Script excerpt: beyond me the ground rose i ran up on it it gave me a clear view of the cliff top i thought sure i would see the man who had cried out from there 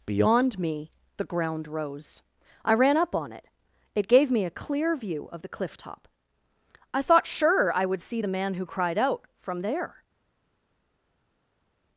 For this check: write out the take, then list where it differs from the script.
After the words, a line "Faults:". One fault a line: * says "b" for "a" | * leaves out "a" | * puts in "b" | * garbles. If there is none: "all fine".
beyond me the ground rose i ran up on it it gave me a clear view of the cliff top i thought sure i would see the man who cried out from there
Faults:
* leaves out "had"